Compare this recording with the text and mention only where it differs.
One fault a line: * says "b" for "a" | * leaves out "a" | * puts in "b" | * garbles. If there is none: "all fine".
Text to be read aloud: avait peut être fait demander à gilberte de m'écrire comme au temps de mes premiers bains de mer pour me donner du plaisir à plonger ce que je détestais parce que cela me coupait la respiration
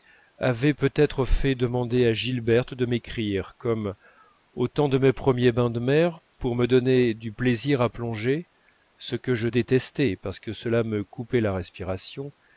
all fine